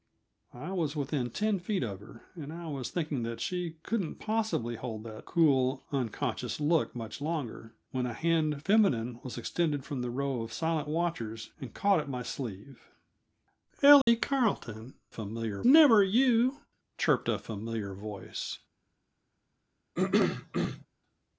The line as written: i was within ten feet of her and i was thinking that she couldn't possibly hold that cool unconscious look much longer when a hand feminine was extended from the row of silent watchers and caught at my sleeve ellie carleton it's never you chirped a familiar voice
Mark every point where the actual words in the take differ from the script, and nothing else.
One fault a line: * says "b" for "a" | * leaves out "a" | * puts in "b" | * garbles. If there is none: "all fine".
* says "familiar" for "it's"